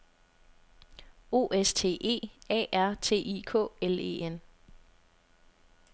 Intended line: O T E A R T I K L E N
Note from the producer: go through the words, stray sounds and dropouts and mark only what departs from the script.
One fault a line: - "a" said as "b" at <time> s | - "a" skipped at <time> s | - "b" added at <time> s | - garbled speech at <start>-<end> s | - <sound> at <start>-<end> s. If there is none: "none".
- "S" added at 1.5 s